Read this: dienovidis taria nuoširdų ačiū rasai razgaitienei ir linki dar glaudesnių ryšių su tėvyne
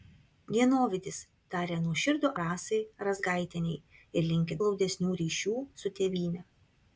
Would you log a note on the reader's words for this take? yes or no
yes